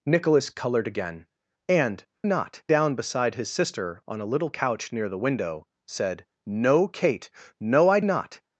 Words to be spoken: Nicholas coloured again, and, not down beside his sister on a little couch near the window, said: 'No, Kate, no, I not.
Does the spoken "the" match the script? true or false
true